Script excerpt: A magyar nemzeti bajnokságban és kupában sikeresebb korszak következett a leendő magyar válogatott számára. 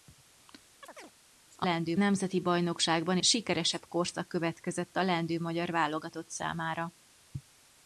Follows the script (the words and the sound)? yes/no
no